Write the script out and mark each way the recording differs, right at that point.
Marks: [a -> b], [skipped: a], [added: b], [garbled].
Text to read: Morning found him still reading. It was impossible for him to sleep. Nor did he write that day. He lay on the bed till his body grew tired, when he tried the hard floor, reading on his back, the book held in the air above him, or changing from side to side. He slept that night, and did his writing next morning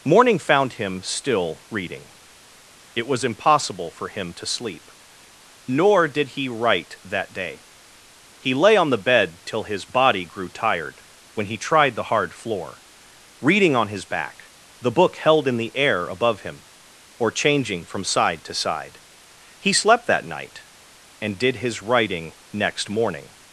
Morning found him still reading. It was impossible for him to sleep. Nor did he write that day. He lay on the bed till his body grew tired, when he tried the hard floor, reading on his back, the book held in the air above him, or changing from side to side. He slept that night, and did his writing next morning